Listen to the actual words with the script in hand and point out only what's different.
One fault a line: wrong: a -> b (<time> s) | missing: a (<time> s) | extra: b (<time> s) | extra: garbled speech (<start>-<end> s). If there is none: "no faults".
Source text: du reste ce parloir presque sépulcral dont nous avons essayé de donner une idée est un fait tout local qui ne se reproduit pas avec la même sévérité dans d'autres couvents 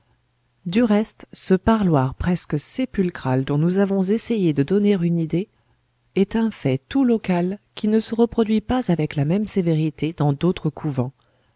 no faults